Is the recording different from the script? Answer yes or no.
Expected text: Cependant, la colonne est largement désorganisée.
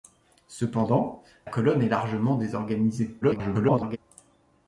yes